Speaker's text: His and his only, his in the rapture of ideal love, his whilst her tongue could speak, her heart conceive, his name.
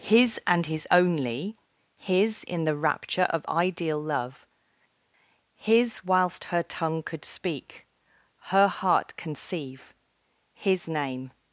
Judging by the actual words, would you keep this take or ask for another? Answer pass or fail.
pass